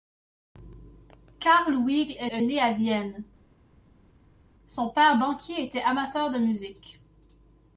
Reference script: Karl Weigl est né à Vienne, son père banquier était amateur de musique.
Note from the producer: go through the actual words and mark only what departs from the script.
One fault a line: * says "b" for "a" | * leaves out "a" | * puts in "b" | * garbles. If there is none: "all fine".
* puts in "est"